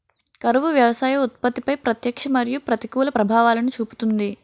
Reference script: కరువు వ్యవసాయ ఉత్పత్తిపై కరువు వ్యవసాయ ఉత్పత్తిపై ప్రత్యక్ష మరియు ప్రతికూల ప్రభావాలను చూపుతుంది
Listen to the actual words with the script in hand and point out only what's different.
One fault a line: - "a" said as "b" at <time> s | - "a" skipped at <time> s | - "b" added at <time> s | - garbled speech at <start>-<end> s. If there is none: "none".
- "కరువు వ్యవసాయ ఉత్పత్తిపై" skipped at 1.8 s